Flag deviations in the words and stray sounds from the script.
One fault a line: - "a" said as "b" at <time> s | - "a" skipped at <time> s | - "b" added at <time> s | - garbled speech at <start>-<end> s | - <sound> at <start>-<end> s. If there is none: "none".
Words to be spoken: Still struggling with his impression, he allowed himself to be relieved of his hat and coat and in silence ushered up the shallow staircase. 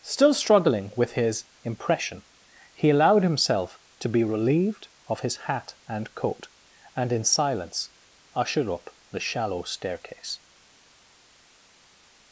none